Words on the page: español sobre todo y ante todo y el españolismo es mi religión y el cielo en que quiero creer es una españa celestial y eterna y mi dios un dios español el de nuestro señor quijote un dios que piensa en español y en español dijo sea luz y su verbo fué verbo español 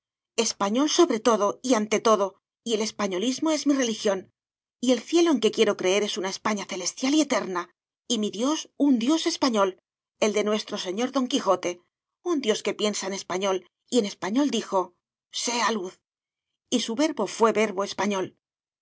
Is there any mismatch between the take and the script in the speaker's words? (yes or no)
yes